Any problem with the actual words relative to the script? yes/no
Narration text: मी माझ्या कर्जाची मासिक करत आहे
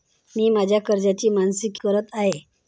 no